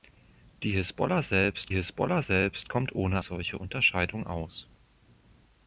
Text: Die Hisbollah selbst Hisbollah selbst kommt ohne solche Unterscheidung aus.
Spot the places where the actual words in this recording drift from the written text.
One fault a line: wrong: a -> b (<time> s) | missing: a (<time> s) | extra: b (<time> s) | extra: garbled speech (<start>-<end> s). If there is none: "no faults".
no faults